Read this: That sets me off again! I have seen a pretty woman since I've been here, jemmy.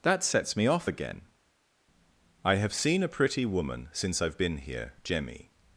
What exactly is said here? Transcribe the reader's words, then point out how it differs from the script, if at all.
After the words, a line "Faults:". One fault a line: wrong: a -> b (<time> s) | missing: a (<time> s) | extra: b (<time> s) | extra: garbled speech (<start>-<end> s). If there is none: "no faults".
That sets me off again! I have seen a pretty woman since I've been here, jemmy.
Faults:
no faults